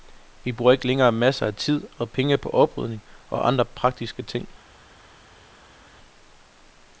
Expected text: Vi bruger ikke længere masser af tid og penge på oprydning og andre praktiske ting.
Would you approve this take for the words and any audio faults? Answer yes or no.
yes